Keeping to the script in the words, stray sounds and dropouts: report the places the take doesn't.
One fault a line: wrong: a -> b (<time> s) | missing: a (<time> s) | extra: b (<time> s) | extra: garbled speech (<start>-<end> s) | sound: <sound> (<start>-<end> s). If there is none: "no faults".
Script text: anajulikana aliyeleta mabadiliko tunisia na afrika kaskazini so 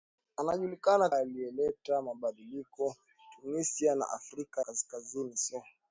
no faults